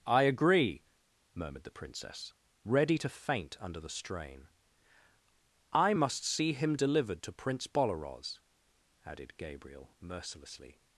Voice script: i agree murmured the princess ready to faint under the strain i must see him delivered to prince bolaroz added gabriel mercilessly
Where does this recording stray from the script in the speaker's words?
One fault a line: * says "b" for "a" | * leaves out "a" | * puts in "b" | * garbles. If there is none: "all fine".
all fine